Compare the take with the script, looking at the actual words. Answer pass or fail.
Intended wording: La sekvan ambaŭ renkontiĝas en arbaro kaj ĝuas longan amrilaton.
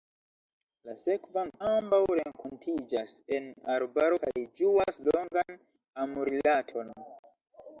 pass